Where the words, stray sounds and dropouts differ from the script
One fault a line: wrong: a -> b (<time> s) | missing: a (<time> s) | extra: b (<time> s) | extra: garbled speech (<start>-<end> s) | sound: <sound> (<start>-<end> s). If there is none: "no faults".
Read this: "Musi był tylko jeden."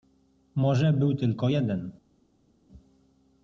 wrong: Musi -> Może (0.6 s)